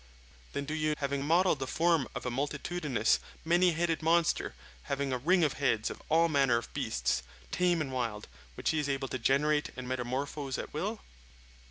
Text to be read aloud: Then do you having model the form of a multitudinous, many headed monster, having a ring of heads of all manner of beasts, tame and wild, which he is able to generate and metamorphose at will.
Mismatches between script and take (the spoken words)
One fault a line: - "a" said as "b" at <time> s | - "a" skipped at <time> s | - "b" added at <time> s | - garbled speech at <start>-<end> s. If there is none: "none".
none